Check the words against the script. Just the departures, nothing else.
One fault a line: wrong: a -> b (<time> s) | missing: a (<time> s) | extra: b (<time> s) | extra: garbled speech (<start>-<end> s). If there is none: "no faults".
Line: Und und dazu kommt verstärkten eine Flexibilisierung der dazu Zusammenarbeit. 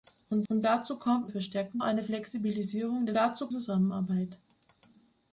no faults